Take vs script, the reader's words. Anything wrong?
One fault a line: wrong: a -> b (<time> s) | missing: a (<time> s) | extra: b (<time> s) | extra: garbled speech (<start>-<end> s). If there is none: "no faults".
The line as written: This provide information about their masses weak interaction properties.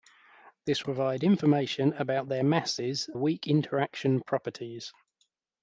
no faults